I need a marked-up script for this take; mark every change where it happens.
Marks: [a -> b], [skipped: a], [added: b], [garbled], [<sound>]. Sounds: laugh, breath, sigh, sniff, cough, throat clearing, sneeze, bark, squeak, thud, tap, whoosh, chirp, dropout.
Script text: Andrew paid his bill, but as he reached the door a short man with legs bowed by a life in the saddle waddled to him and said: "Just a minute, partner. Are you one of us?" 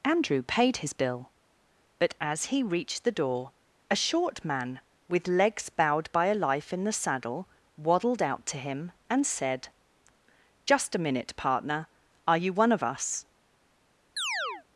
Andrew paid his bill, but as he reached the door a short man with legs bowed by a life in the saddle waddled [added: out] to him and said: "Just a minute, partner. Are you one of us?" [chirp]